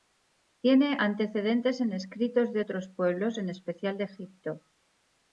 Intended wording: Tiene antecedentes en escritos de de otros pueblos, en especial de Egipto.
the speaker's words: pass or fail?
fail